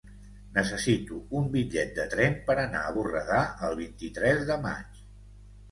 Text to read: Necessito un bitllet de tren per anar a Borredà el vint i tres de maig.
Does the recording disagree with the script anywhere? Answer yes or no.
no